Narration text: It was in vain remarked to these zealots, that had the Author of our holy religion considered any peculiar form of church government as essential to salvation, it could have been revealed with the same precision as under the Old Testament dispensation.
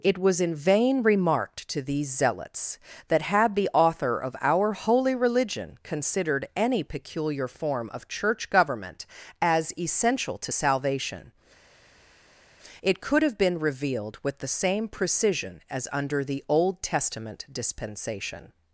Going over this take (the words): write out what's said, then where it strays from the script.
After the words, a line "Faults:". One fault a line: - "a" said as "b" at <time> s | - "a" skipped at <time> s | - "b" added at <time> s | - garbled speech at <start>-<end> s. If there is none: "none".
It was in vain remarked to these zealots, that had the Author of our holy religion considered any peculiar form of church government as essential to salvation, it could have been revealed with the same precision as under the Old Testament dispensation.
Faults:
none